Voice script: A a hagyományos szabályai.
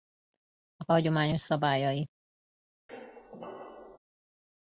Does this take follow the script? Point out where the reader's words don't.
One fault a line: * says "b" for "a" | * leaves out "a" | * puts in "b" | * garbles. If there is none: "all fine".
all fine